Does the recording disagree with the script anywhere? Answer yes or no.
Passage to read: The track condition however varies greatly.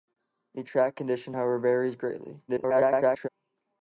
yes